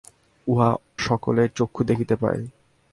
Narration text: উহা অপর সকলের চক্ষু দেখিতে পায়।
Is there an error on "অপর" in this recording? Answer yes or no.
yes